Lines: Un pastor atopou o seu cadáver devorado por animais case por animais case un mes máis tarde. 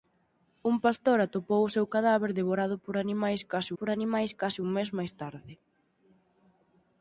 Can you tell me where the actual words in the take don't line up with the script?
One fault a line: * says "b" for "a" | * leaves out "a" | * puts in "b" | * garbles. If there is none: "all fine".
all fine